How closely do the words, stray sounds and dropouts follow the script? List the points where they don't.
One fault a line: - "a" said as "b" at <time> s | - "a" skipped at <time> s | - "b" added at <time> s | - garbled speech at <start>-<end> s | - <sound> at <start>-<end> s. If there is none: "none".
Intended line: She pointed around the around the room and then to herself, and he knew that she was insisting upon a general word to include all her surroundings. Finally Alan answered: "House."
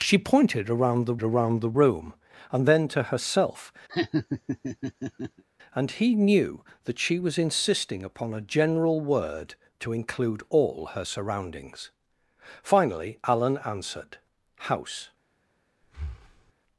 - laugh at 3.9-5.4 s
- breath at 15.8-16.5 s